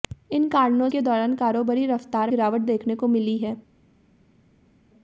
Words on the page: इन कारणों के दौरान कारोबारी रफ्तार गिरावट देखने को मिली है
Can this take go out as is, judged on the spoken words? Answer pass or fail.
pass